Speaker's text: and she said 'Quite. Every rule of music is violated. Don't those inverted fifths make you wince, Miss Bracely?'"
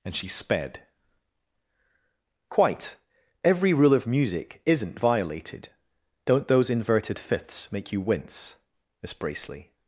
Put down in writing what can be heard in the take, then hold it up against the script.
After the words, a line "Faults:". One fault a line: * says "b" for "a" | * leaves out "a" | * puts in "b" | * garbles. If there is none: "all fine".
and she sped 'Quite. Every rule of music isn't violated. Don't those inverted fifths make you wince, Miss Bracely?'"
Faults:
* says "sped" for "said"
* says "isn't" for "is"